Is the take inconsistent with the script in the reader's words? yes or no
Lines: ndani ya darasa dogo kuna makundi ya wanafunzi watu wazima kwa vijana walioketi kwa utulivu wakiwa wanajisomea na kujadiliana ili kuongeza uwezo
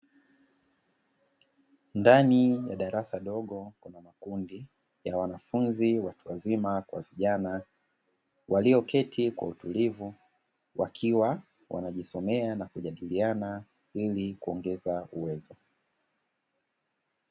no